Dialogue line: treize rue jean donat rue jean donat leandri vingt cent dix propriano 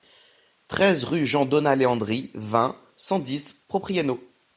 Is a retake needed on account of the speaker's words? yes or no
yes